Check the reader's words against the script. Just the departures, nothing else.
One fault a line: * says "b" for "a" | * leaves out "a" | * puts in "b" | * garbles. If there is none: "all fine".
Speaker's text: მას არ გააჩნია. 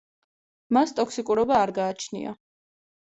* puts in "ტოქსიკურობა"